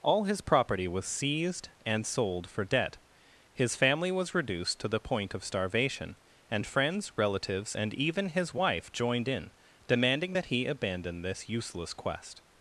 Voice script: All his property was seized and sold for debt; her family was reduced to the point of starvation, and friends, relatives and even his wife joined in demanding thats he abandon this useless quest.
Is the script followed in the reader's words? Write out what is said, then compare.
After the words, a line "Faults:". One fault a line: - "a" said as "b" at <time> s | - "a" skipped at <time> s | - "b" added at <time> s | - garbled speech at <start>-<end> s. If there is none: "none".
All his property was seized and sold for debt; his family was reduced to the point of starvation, and friends, relatives and even his wife joined in demanding that he abandon this useless quest.
Faults:
- "her" said as "his" at 3.5 s
- "thats" said as "that" at 10.3 s